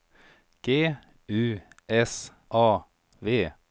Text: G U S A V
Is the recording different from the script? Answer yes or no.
no